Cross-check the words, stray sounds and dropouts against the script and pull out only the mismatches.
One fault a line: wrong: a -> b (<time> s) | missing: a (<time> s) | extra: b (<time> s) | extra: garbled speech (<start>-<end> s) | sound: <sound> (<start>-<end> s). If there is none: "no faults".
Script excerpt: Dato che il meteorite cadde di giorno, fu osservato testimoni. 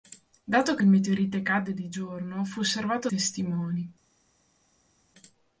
no faults